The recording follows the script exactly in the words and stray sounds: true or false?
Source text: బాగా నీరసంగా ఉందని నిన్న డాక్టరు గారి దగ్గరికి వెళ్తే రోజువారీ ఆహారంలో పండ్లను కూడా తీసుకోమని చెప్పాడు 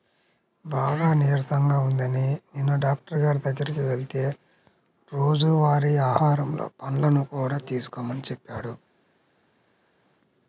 true